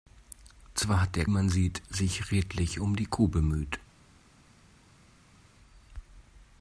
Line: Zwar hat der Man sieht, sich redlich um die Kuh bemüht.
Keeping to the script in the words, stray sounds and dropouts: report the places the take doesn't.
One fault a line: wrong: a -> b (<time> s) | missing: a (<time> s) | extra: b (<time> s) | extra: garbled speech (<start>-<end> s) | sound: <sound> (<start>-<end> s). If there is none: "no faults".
no faults